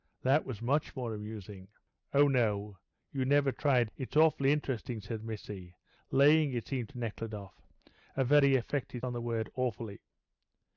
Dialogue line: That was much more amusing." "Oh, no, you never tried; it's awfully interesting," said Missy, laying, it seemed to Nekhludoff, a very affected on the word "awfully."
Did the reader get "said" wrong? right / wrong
right